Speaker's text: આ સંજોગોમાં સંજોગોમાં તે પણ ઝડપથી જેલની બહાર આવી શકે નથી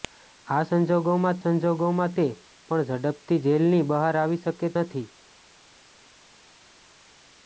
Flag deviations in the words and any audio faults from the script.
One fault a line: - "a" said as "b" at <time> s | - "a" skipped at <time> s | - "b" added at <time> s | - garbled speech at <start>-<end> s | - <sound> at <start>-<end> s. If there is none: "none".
none